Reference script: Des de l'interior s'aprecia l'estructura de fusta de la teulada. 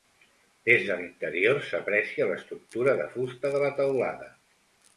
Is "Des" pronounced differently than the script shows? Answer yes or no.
no